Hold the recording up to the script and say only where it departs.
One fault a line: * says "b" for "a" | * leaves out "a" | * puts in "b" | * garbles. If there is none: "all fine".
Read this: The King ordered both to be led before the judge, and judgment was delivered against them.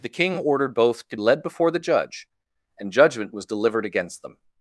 * leaves out "be"